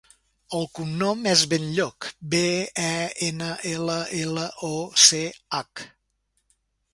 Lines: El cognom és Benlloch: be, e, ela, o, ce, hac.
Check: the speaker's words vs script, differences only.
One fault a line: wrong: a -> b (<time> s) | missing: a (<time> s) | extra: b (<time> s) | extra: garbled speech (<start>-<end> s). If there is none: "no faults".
extra: ena ela (3.3 s)